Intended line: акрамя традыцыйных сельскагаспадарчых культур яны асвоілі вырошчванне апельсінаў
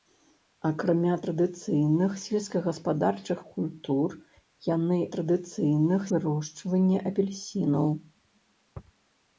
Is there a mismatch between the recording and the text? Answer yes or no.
yes